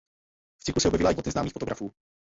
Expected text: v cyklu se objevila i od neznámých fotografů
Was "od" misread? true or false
false